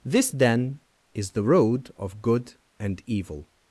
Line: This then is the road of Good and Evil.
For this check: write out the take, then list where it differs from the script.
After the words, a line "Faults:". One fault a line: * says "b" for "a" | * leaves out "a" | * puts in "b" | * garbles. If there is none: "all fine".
This then is the road of Good and Evil.
Faults:
all fine